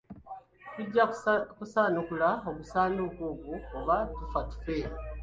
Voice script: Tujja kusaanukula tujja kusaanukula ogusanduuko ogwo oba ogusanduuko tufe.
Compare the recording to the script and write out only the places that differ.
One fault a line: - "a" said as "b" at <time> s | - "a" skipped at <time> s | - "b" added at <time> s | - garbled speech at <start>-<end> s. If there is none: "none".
- "tujja kusaanukula" skipped at 2.3 s
- "ogusanduuko" said as "tufa" at 4.2 s